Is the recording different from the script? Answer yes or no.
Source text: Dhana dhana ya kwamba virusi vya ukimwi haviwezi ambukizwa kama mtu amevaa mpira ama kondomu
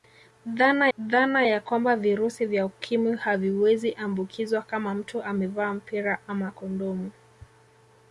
no